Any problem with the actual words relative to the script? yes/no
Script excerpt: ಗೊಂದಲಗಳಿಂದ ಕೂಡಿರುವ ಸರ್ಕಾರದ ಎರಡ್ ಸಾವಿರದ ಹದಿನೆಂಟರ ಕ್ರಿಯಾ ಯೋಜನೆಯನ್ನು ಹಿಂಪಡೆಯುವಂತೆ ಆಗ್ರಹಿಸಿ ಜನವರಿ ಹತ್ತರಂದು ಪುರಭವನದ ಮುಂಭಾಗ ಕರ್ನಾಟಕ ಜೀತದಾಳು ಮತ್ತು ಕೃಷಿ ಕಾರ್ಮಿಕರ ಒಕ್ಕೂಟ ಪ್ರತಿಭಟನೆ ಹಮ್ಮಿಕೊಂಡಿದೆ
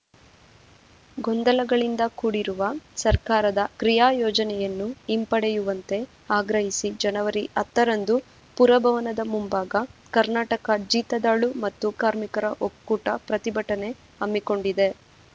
yes